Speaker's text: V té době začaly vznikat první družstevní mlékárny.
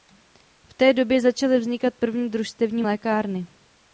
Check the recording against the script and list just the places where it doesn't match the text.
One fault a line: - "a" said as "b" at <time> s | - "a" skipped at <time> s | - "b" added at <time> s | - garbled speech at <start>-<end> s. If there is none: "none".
none